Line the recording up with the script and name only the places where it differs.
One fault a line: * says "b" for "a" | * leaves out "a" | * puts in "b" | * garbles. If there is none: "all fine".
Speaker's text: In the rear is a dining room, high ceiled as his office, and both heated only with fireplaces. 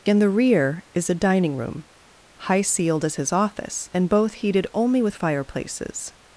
all fine